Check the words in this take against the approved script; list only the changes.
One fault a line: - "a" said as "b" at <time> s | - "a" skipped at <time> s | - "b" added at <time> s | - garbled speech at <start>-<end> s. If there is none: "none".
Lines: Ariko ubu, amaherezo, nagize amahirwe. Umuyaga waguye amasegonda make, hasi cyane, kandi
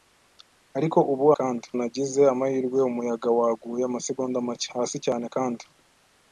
- "amaherezo" said as "kandi" at 1.4 s